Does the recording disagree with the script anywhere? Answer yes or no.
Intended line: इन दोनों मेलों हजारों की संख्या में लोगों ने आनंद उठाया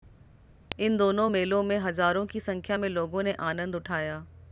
yes